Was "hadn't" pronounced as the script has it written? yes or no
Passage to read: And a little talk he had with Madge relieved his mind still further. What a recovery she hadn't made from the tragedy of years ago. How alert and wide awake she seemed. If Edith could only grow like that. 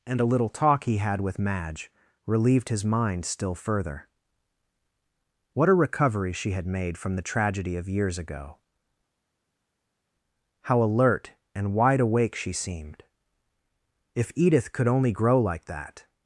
no